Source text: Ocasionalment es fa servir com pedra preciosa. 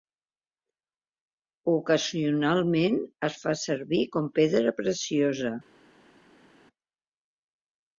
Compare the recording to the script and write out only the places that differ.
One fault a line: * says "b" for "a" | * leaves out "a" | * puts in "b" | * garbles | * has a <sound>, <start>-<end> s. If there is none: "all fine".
all fine